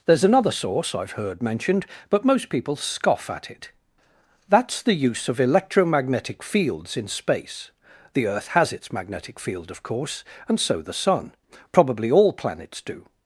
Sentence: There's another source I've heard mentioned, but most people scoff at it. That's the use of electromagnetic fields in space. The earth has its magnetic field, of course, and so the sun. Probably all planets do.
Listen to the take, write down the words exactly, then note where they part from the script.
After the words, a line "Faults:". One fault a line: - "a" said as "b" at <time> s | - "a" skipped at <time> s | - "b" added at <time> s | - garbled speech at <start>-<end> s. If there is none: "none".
There's another source I've heard mentioned, but most people scoff at it. That's the use of electromagnetic fields in space. The earth has its magnetic field, of course, and so the sun. Probably all planets do.
Faults:
none